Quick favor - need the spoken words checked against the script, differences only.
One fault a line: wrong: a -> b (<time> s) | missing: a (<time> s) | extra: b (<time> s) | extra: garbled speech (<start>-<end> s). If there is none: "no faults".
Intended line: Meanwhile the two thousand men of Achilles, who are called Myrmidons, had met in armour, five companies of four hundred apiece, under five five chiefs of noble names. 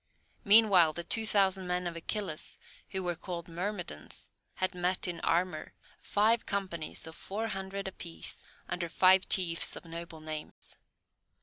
wrong: are -> were (3.0 s)
missing: five (9.3 s)